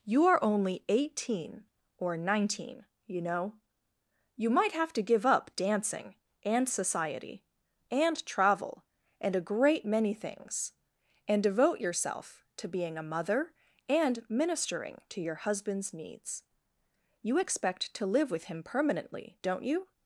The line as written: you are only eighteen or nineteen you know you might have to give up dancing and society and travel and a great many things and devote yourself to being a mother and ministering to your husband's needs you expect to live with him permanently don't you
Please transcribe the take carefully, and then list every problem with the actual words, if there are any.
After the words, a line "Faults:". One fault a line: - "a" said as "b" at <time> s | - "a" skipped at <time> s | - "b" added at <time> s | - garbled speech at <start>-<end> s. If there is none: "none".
you are only eighteen or nineteen you know you might have to give up dancing and society and travel and a great many things and devote yourself to being a mother and ministering to your husband's needs you expect to live with him permanently don't you
Faults:
none